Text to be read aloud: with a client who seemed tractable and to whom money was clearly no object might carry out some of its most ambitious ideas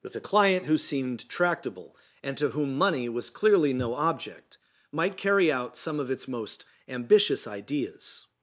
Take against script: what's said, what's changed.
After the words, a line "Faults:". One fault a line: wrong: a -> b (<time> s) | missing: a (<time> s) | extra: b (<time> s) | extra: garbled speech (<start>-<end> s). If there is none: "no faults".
with a client who seemed tractable and to whom money was clearly no object might carry out some of its most ambitious ideas
Faults:
no faults